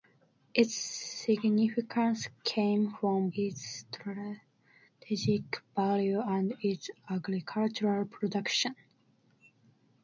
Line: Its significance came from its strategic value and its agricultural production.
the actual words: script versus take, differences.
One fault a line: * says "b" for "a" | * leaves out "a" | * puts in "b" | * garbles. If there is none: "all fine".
all fine